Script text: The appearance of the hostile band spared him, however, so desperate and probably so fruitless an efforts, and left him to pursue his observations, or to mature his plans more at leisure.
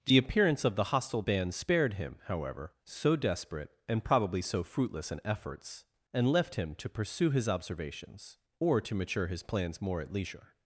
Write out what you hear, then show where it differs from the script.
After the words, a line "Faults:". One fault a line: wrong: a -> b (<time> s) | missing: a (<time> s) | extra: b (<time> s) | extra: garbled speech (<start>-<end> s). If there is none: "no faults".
The appearance of the hostile band spared him, however, so desperate and probably so fruitless an efforts, and left him to pursue his observations, or to mature his plans more at leisure.
Faults:
no faults